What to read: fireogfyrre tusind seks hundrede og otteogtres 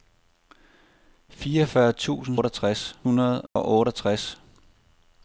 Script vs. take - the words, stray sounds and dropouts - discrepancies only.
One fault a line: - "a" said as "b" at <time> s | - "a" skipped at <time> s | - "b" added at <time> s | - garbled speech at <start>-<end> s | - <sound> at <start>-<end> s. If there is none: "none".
- "seks" said as "otteogtres" at 2.3 s
- dropout at 3.5-3.6 s